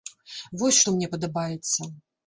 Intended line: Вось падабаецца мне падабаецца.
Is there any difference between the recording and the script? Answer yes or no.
yes